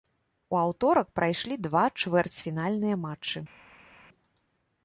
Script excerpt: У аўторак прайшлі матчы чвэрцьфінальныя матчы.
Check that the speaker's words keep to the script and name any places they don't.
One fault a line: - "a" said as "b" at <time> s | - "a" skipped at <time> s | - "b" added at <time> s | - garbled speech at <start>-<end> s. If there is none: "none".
- "матчы" said as "два" at 1.7 s